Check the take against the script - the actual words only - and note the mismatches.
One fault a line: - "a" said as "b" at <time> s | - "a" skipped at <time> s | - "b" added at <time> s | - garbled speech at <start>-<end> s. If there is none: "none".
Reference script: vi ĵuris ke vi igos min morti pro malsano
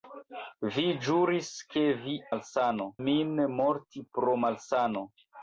- "igos" said as "malsano" at 2.3 s